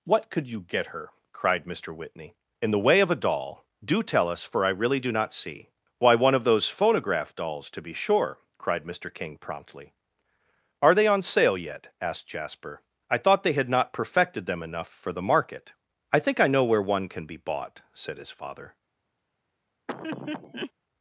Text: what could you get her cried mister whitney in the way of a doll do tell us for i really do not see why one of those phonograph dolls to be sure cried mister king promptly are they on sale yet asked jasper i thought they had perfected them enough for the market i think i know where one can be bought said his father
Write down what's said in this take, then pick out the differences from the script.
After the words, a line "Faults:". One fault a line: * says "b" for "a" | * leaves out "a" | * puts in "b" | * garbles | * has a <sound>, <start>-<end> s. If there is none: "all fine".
what could you get her cried mister whitney in the way of a doll do tell us for i really do not see why one of those phonograph dolls to be sure cried mister king promptly are they on sale yet asked jasper i thought they had not perfected them enough for the market i think i know where one can be bought said his father
Faults:
* puts in "not"
* has a laugh, 19.9-20.7 s